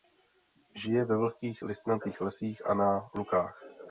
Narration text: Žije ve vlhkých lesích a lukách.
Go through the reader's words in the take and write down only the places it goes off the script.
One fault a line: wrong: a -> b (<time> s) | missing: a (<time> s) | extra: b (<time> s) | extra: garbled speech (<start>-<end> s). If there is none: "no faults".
extra: listnatých (1.6 s)
extra: na (2.7 s)